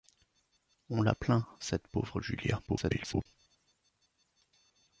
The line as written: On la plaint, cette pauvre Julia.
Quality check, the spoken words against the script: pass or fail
fail